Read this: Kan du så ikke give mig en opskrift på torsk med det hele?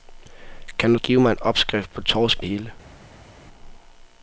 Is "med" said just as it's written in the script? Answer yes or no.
no